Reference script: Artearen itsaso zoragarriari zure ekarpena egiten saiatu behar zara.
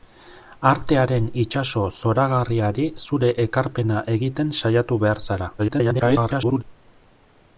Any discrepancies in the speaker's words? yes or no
yes